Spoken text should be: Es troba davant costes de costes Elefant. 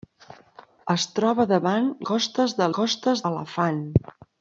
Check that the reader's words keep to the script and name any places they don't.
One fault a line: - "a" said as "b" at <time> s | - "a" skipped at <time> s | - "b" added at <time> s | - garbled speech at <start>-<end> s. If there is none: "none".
none